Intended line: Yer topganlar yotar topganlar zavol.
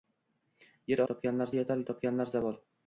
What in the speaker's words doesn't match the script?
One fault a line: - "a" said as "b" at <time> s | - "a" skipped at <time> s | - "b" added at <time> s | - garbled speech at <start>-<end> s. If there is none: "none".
none